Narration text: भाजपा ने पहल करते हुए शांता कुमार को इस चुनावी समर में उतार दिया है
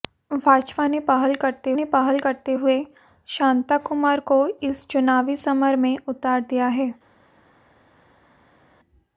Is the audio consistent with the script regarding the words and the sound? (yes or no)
no